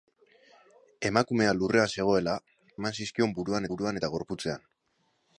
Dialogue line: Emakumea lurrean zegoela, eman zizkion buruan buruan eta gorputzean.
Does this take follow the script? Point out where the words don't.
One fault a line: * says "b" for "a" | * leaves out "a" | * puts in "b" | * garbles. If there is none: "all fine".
all fine